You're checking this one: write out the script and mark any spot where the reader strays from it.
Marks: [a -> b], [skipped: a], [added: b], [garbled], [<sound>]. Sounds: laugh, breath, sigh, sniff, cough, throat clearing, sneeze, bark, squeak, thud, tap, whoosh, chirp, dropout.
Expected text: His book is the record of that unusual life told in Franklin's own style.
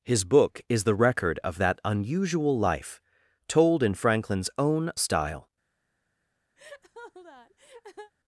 His book is the record of that unusual life told in Franklin's own style. [laugh]